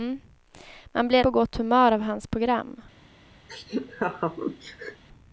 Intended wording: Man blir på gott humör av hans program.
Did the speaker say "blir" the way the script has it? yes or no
yes